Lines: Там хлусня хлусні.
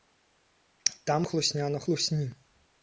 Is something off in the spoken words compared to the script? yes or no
yes